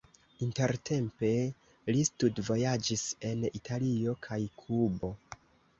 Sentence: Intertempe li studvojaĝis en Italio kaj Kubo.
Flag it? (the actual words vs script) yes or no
no